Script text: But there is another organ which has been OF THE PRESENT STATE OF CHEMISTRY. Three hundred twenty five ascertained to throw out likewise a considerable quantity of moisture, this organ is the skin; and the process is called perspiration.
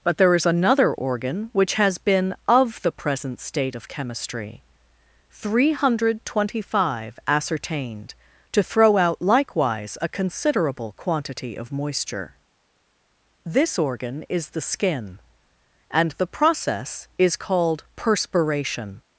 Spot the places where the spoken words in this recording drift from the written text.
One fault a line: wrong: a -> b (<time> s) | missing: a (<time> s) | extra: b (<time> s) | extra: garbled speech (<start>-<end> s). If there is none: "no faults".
no faults